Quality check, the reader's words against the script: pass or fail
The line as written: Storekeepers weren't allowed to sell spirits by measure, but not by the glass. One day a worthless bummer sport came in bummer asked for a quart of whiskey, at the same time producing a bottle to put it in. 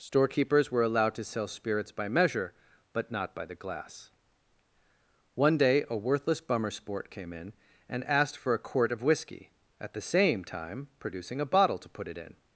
fail